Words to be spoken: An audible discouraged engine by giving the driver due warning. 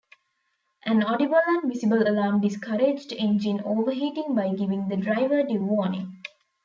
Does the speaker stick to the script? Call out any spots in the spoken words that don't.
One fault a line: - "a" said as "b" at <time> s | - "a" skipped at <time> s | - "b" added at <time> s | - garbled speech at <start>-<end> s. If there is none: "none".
- "and visible alarm" added at 1.4 s
- "overheating" added at 3.7 s